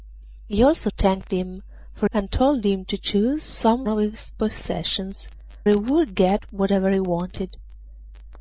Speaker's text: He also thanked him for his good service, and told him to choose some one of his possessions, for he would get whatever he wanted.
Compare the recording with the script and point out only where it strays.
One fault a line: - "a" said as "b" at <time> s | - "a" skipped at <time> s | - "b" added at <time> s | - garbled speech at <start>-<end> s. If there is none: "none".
- "his good service" skipped at 2.1 s
- "one" skipped at 3.9 s
- "for" skipped at 5.3 s